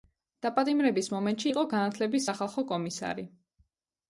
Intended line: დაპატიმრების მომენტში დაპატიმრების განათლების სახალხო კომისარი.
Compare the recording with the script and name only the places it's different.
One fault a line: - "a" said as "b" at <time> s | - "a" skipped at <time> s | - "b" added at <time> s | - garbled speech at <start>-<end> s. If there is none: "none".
- "დაპატიმრების" said as "იყო" at 1.5 s